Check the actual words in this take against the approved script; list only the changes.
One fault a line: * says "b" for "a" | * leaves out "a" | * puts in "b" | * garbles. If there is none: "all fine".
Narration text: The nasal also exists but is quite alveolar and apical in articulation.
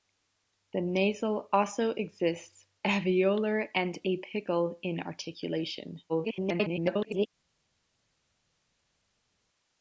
* leaves out "but is quite"
* garbles